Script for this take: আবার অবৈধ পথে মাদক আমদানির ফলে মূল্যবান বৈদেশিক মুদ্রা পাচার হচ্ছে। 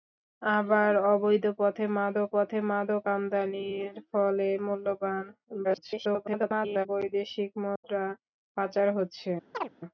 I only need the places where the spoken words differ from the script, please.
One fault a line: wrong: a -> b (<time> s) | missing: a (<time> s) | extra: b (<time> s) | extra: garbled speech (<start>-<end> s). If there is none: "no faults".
extra: পথে মাদক (2.3 s)
extra: garbled speech (5.6-6.9 s)